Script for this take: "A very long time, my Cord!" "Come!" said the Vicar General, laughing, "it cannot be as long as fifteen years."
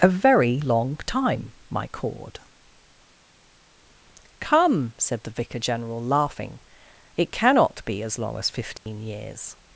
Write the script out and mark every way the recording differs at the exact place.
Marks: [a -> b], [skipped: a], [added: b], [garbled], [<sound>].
"A very long time, my Cord!" "Come!" said the Vicar General, laughing, "it cannot be as long as fifteen [dropout] years."